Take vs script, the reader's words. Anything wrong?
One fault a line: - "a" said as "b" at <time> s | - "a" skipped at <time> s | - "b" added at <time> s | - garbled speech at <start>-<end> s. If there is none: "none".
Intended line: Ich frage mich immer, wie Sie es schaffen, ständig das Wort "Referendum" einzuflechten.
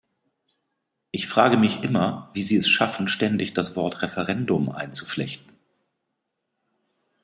none